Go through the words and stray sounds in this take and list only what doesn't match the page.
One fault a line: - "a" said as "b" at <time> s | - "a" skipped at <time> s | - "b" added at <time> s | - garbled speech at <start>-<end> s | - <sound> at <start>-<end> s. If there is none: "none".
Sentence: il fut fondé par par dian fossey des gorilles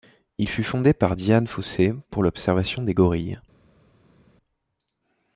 - "par" skipped at 1.2 s
- "pour l'observation" added at 2.1 s